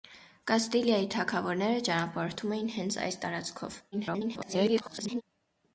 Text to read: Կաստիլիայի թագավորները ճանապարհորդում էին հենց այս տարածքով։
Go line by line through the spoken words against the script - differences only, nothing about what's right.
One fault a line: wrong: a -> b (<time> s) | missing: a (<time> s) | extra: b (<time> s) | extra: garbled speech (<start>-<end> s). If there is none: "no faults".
extra: garbled speech (3.9-5.2 s)